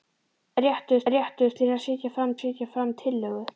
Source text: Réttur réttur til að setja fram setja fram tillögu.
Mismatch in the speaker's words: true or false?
false